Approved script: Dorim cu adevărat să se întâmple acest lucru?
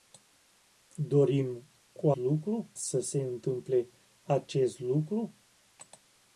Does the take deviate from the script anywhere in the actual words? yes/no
yes